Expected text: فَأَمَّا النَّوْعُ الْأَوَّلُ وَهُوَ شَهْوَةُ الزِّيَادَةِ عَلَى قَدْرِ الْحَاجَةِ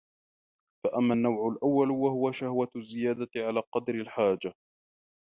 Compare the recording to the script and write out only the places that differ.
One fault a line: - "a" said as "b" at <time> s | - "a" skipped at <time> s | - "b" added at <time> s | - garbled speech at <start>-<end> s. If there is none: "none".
none